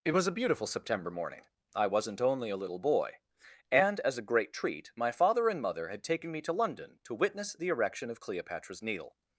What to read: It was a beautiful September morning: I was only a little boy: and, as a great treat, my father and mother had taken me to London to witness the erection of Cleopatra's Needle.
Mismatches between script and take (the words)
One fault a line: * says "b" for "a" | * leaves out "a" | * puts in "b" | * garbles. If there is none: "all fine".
* says "wasn't" for "was"